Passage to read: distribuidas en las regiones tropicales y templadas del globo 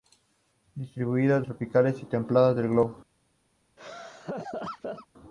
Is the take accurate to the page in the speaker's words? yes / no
no